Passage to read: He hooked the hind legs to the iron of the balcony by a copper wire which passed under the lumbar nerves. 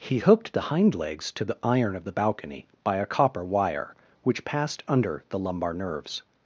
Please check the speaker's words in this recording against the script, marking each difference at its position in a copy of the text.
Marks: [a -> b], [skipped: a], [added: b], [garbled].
He hooked the hind legs to the iron of the balcony by a copper wire which passed under the lumbar nerves.